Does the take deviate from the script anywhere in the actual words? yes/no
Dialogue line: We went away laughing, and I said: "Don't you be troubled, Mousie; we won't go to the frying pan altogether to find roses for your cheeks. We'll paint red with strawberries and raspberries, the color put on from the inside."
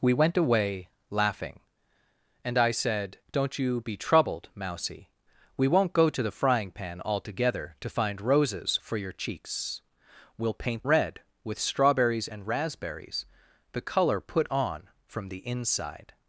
no